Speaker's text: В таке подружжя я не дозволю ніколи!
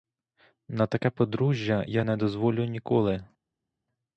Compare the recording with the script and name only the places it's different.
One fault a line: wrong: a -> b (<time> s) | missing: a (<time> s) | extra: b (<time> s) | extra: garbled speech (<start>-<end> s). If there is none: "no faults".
wrong: В -> На (0.7 s)